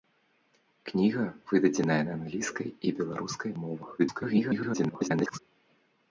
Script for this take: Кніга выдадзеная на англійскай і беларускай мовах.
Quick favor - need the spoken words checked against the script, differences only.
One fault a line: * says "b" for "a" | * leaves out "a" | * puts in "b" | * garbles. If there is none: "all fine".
* garbles